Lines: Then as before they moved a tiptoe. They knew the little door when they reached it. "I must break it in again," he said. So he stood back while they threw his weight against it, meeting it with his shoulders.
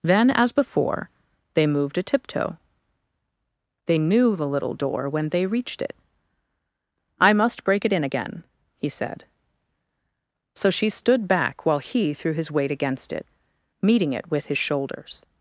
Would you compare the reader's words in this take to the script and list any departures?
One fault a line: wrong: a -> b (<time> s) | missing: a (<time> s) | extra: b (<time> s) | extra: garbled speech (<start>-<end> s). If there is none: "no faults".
wrong: he -> she (10.7 s)
wrong: they -> he (11.8 s)